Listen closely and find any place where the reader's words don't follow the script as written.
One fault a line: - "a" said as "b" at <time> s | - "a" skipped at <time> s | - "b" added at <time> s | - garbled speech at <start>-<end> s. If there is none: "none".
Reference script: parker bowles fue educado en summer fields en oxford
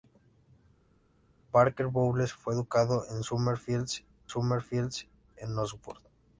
- "summer fields" added at 4.3 s